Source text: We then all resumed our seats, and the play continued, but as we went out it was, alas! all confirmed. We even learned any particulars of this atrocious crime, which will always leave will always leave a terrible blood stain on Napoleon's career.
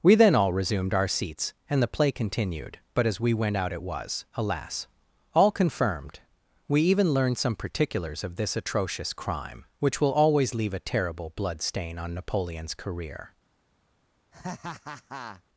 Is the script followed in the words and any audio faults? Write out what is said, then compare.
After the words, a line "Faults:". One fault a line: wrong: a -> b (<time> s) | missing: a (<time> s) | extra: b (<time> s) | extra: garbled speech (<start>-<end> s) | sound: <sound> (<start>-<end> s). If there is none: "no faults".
We then all resumed our seats, and the play continued, but as we went out it was, alas! all confirmed. We even learned some particulars of this atrocious crime, which will always leave a terrible blood stain on Napoleon's career.
Faults:
wrong: any -> some (7.4 s)
missing: will always leave (10.7 s)
sound: laugh (14.3-15.4 s)